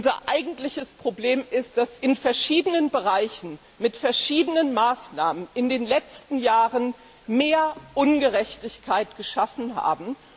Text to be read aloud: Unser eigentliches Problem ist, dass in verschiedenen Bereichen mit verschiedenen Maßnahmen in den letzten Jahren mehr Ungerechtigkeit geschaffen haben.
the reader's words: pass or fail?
pass